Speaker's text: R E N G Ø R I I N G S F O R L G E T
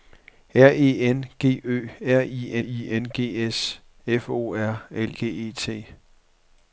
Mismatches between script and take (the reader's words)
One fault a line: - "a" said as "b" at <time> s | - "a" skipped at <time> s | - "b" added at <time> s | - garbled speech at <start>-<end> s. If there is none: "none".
none